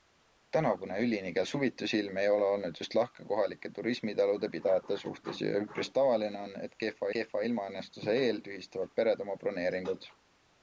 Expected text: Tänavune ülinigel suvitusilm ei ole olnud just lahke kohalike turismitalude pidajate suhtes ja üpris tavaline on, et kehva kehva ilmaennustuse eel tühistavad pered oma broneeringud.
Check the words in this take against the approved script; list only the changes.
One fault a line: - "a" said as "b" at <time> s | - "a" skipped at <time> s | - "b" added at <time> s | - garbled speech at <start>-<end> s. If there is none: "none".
none